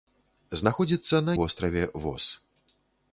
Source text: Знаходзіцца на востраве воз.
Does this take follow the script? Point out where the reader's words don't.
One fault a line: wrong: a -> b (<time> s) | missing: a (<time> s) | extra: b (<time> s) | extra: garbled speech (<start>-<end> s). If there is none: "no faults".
no faults